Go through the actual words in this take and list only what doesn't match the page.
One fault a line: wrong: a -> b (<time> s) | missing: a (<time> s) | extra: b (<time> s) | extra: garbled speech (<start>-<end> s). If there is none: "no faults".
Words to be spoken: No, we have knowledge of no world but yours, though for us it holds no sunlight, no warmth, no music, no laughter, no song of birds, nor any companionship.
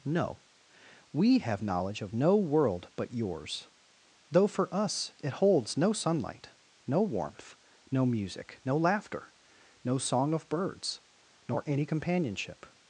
no faults